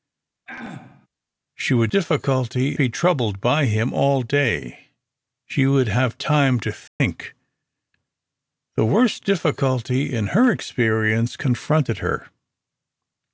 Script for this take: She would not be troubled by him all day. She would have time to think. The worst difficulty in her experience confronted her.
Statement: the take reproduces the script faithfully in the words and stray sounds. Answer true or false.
false